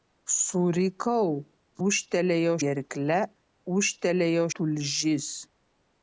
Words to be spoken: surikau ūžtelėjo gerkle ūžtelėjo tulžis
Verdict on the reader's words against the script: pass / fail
pass